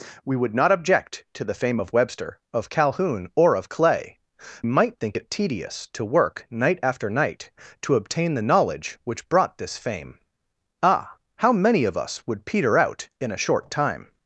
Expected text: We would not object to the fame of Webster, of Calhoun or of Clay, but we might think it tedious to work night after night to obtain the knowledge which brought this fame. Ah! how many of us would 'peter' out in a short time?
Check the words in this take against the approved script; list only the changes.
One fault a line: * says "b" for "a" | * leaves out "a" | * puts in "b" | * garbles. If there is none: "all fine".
* leaves out "but we"